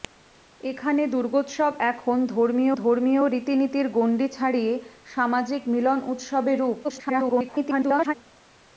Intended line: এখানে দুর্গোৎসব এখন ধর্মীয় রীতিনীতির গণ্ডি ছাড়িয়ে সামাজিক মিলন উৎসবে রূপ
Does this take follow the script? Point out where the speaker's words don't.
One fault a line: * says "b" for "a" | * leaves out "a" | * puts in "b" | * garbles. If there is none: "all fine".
* puts in "ধর্মীয়"
* garbles